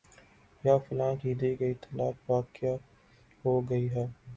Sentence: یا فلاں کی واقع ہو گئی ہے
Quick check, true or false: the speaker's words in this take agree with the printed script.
false